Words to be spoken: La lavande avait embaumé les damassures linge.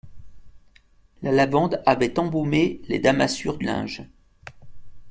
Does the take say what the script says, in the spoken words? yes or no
yes